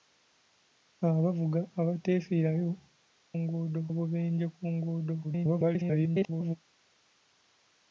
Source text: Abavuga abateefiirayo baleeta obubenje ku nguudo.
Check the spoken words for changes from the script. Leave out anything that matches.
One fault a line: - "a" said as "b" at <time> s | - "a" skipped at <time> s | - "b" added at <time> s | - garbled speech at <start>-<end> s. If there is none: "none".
- "baleeta" said as "nguudo" at 3.4 s
- garbled speech at 5.2-6.6 s